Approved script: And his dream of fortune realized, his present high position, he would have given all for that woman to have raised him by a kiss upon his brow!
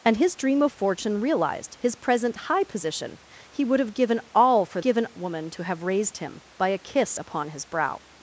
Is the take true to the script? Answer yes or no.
no